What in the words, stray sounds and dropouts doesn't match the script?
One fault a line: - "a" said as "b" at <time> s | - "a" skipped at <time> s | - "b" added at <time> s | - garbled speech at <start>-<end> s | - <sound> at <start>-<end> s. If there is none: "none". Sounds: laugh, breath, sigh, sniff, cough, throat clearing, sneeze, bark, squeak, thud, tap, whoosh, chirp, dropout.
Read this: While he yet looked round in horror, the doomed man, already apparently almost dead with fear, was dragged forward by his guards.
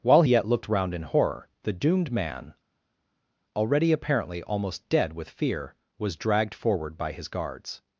- "he" skipped at 0.2 s